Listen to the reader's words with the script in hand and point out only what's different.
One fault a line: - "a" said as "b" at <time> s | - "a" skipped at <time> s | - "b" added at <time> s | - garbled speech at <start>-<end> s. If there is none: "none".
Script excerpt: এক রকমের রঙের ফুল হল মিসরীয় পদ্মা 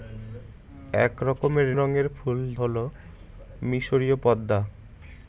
none